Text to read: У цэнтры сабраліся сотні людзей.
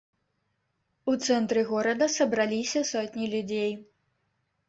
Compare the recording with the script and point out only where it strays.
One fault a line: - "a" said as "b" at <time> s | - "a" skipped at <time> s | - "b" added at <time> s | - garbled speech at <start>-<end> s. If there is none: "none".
- "горада" added at 1.7 s